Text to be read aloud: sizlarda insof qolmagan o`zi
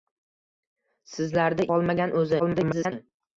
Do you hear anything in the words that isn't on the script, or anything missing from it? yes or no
yes